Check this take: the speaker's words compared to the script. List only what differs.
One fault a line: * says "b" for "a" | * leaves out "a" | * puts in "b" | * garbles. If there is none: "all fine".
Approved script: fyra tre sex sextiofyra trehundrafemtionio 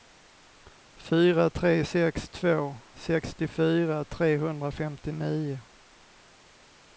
* puts in "två"